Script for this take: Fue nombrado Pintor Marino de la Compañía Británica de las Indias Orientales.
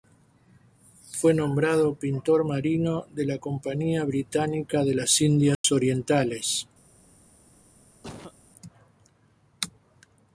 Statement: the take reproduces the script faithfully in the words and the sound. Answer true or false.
false